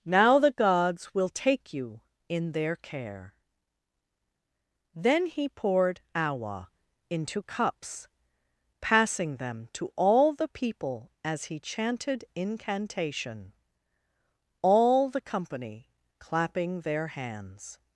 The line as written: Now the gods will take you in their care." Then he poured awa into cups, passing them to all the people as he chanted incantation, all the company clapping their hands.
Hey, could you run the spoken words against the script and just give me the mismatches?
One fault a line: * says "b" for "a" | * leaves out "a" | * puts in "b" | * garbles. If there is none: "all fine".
all fine